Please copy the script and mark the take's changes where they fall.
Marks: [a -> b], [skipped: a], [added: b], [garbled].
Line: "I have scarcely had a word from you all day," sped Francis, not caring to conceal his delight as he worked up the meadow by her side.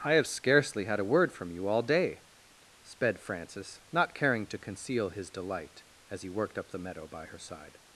"I have scarcely had a word from you all day," sped Francis, not caring to conceal his delight as he worked up the meadow by her side.